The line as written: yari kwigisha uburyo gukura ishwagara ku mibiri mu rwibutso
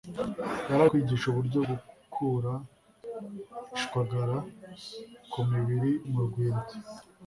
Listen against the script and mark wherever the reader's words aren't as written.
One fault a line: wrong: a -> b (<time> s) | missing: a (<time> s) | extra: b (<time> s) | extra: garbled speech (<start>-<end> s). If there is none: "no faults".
no faults